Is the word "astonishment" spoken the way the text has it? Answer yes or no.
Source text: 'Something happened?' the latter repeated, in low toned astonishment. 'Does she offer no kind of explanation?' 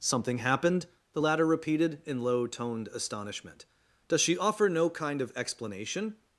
yes